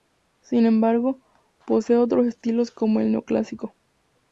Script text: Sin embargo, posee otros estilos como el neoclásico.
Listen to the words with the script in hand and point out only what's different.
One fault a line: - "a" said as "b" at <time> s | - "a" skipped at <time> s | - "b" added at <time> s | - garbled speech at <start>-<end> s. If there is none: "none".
none